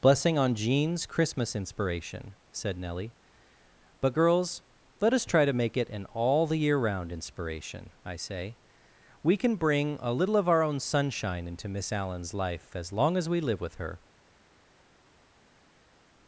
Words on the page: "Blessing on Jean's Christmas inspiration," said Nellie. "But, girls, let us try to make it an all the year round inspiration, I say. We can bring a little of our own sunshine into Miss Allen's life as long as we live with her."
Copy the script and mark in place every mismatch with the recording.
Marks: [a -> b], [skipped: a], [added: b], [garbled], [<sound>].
"Blessing on Jean's Christmas inspiration," said Nellie. "But, girls, let us try to make it an all the year round inspiration, I say. We can bring a little of our own sunshine into Miss Allen's life as long as we live with her."